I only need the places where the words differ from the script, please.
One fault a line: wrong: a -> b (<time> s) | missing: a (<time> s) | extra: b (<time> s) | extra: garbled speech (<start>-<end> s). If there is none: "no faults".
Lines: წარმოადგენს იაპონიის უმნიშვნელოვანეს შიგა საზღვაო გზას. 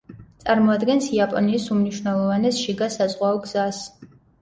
no faults